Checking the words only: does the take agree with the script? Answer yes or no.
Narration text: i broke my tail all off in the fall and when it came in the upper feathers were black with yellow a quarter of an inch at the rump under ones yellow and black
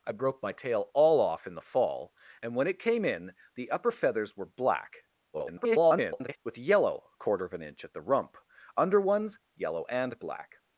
no